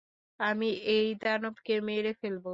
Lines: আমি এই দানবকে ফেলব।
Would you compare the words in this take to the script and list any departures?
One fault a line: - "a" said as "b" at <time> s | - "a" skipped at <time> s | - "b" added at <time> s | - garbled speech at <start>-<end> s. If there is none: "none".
- "মেরে" added at 1.9 s